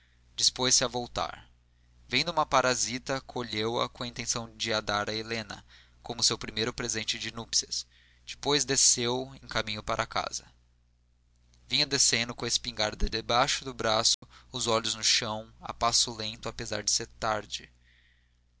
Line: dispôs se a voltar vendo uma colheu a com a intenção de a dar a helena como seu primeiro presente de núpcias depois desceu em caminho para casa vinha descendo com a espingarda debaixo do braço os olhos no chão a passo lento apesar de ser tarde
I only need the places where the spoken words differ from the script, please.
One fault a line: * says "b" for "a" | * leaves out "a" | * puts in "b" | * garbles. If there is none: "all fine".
* puts in "parasita"